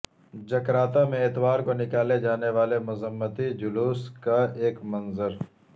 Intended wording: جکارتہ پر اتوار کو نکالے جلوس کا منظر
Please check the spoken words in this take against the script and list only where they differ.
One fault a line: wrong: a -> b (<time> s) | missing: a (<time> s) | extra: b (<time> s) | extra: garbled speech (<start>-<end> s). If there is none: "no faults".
wrong: پر -> میں (1.1 s)
extra: جانے والے مذمتی (2.2 s)
extra: ایک (4.6 s)